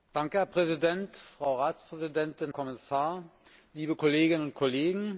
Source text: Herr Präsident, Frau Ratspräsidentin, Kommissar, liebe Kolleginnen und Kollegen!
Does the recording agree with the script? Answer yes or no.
yes